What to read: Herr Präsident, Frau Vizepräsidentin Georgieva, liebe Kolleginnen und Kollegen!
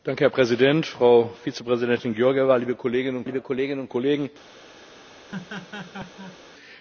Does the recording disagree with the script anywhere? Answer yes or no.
yes